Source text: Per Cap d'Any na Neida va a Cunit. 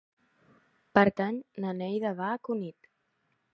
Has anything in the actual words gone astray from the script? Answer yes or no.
yes